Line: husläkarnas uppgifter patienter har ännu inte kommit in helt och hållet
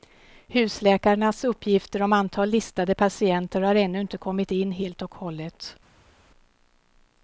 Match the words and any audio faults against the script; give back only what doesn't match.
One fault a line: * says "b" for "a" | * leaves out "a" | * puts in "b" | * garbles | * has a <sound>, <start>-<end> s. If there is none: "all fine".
* puts in "om antal listade"